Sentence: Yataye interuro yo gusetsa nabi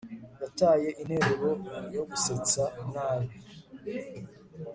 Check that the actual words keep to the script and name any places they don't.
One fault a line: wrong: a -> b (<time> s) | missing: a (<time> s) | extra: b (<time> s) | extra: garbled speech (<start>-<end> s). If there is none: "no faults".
no faults